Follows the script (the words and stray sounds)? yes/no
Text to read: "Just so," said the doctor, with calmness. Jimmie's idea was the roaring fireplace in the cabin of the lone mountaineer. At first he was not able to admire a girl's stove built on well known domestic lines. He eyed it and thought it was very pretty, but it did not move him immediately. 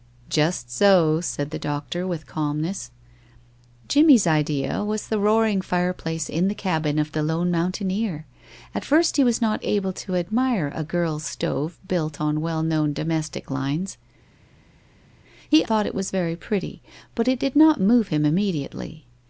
no